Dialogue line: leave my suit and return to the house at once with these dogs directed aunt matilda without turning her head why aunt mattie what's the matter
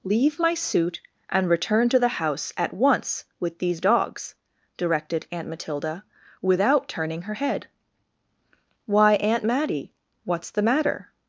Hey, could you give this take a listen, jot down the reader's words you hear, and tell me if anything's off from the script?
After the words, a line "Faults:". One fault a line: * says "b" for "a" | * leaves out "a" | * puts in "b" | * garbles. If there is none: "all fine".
leave my suit and return to the house at once with these dogs directed aunt matilda without turning her head why aunt mattie what's the matter
Faults:
all fine